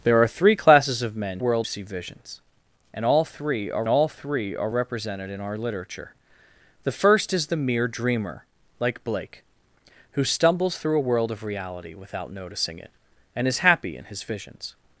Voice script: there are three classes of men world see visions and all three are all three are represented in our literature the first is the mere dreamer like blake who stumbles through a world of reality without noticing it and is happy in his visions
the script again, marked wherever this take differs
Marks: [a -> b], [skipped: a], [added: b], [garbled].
there are three classes of men world see visions and all three are all three are represented in our literature the first is the mere dreamer like blake who stumbles through a world of reality without noticing it and is happy in his visions